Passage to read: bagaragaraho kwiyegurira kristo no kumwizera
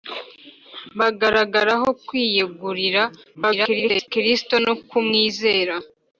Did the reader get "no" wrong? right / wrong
right